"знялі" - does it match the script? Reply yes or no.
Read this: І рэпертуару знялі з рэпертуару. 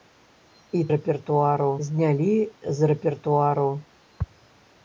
yes